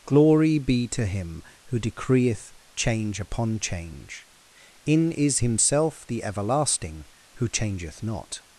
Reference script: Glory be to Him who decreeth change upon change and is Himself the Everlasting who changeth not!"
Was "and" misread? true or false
true